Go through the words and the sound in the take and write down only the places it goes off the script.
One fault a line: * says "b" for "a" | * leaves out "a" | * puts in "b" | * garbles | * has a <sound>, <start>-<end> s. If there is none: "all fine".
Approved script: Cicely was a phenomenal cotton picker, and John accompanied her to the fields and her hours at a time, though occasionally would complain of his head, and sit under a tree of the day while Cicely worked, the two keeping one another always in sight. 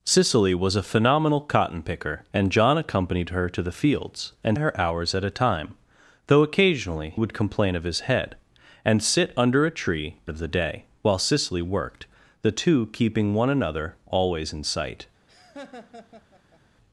* has a laugh, 15.3-16.6 s